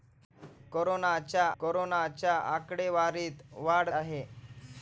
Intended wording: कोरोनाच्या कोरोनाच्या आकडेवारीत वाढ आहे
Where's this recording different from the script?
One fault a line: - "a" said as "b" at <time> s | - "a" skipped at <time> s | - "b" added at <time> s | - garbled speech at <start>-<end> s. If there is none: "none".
none